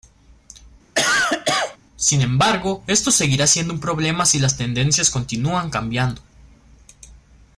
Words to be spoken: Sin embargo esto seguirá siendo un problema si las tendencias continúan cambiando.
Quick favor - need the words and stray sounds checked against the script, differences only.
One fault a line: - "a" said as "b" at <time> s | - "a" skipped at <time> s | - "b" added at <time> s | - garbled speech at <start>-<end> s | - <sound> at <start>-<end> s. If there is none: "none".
- cough at 0.9-1.8 s